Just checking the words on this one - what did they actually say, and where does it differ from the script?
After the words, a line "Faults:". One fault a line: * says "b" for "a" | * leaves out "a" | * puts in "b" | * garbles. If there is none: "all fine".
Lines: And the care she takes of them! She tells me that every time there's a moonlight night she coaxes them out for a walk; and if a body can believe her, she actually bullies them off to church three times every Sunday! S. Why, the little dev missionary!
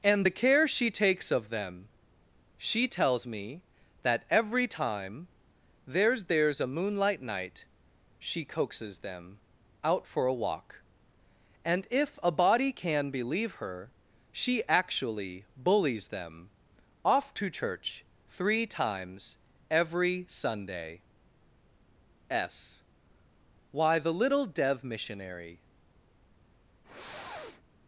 And the care she takes of them! She tells me that every time there's there's a moonlight night she coaxes them out for a walk; and if a body can believe her, she actually bullies them off to church three times every Sunday! S. Why, the little dev missionary!
Faults:
* puts in "there's"